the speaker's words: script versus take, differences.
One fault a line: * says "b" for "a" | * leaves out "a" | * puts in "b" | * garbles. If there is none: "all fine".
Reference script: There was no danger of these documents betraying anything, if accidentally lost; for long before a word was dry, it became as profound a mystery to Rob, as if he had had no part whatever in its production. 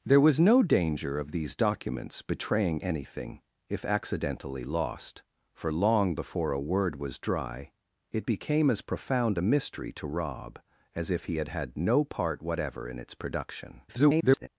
* garbles